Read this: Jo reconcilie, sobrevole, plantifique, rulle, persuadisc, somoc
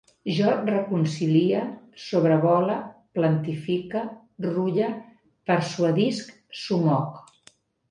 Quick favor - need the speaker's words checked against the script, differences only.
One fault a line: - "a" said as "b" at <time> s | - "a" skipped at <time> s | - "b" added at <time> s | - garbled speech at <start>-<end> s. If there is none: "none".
none